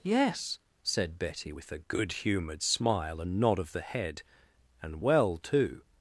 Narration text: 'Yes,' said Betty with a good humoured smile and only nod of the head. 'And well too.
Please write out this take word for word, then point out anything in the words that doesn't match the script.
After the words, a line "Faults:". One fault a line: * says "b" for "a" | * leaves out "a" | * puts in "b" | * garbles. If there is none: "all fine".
'Yes,' said Betty with a good humoured smile and nod of the head. 'And well too.
Faults:
* leaves out "only"